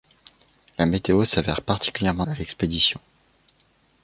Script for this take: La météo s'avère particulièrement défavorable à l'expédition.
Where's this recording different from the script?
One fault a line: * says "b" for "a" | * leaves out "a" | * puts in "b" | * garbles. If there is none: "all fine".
* leaves out "défavorable"